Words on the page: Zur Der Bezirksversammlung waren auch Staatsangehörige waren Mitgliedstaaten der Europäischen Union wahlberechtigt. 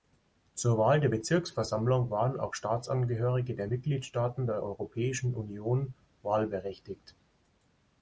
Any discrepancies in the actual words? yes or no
yes